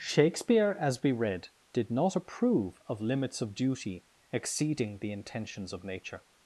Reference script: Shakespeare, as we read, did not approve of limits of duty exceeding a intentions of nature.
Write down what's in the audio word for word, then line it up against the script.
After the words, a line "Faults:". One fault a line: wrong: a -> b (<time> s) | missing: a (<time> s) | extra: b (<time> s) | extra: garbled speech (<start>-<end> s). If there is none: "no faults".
Shakespeare, as we read, did not approve of limits of duty exceeding the intentions of nature.
Faults:
wrong: a -> the (5.0 s)